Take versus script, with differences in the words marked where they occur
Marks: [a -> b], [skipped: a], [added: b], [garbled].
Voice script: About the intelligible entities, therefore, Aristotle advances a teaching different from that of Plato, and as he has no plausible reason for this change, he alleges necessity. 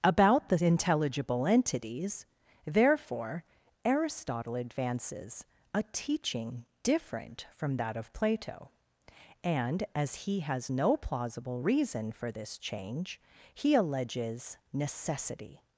About the intelligible entities, therefore, Aristotle advances a teaching different from that of Plato, and as he has no plausible reason for this change, he alleges necessity.